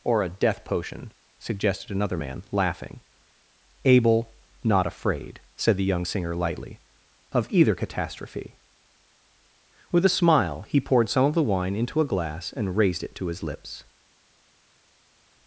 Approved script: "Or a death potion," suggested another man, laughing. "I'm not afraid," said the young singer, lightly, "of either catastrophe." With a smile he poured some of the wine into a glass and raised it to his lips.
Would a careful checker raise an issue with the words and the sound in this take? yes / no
yes